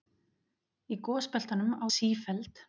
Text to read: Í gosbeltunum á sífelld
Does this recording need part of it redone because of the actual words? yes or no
no